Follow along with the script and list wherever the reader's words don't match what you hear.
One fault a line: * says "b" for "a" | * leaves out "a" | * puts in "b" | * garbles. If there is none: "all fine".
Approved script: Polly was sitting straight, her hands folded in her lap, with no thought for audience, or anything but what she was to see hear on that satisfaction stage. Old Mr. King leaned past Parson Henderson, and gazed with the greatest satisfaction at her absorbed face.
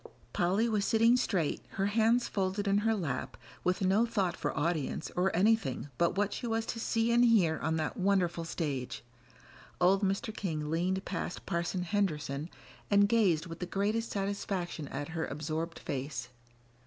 * puts in "and"
* says "wonderful" for "satisfaction"